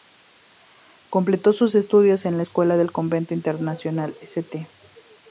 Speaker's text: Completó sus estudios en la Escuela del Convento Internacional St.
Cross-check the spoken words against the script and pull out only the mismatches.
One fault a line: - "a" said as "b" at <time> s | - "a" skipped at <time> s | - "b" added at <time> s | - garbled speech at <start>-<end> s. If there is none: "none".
none